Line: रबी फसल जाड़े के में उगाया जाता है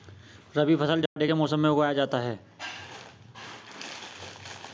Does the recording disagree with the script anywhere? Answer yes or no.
yes